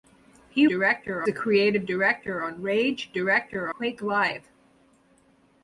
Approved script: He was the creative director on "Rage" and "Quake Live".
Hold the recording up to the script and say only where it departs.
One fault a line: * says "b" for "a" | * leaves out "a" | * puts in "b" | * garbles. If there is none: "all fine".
* says "director" for "was"
* says "director" for "and"